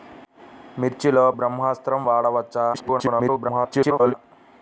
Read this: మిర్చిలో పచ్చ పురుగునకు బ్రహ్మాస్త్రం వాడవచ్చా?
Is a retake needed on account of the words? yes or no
yes